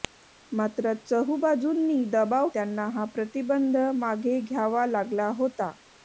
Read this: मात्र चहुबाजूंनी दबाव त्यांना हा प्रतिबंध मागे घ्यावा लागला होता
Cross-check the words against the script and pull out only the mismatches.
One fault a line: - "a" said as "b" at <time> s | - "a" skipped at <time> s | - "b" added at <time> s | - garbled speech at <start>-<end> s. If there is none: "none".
none